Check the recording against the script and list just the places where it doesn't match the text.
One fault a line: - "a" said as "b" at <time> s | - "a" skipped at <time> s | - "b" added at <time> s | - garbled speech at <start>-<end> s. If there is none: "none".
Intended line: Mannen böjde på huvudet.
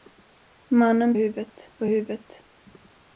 - "böjde" said as "huvudet" at 1.1 s